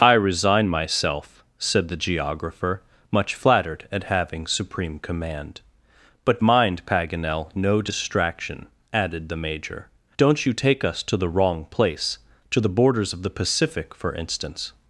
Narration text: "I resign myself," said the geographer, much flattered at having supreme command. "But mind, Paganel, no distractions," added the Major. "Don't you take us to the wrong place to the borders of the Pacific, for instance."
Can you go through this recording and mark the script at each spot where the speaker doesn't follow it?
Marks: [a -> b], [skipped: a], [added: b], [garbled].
"I resign myself," said the geographer, much flattered at having supreme command. "But mind, Paganel, no [distractions," -> distraction] added the Major. "Don't you take us to the wrong place to the borders of the Pacific, for instance."